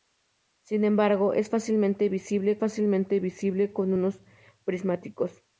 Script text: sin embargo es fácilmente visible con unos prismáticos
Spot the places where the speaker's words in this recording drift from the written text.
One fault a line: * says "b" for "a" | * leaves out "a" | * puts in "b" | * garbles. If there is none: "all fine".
* puts in "fácilmente visible"